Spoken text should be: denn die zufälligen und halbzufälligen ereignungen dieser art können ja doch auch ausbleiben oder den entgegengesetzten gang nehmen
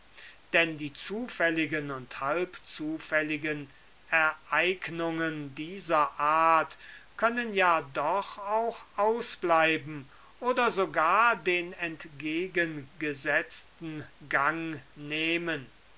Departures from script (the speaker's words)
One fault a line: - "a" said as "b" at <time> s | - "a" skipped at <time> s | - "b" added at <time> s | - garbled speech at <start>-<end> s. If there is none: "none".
- "sogar" added at 10.7 s